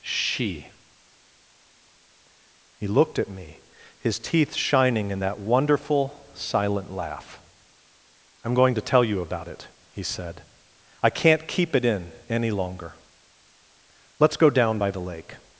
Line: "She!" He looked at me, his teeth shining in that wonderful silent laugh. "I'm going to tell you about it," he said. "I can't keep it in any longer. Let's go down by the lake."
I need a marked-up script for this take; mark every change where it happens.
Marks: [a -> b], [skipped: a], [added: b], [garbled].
"She!" He looked at me, his teeth shining in that wonderful silent laugh. "I'm going to tell you about it," he said. "I can't keep it in any longer. Let's go down by the lake."